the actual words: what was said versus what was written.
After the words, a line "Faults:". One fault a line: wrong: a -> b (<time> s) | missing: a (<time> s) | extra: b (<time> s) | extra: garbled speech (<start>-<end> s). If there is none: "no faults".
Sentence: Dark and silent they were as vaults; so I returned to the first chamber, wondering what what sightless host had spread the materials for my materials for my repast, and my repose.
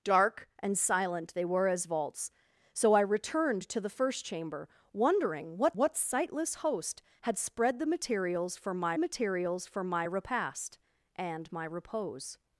Dark and silent they were as vaults; so I returned to the first chamber, wondering what what sightless host had spread the materials for my materials for my repast, and my repose.
Faults:
no faults